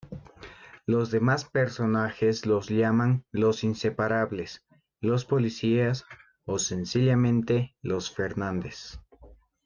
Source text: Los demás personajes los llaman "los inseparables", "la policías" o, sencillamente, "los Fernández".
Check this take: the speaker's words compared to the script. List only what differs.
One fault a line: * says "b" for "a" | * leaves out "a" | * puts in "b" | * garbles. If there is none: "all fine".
* says "los" for "la"